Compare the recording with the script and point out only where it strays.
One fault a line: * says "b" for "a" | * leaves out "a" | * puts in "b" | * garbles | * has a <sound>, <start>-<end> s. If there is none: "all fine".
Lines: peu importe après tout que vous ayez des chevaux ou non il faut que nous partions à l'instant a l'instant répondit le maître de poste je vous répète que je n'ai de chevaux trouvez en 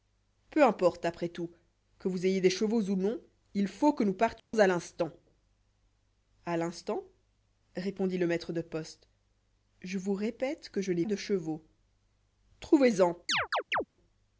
* has a dropout, 4.4-4.5 s
* has a chirp, 13.3-13.8 s